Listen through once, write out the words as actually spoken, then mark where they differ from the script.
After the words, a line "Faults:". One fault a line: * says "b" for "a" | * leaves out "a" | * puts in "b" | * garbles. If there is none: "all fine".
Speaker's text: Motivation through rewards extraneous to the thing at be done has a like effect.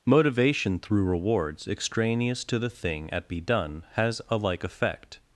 Motivation through rewards extraneous to the thing at be done has a like effect.
Faults:
all fine